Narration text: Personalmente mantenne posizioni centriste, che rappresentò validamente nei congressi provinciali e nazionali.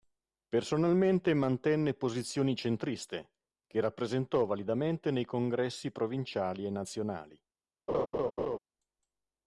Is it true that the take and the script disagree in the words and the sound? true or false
true